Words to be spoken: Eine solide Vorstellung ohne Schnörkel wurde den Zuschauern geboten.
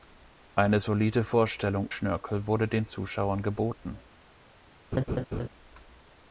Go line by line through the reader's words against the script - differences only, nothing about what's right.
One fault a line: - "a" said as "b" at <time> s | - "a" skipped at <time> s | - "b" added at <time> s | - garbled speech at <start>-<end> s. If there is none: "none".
- "ohne" skipped at 1.9 s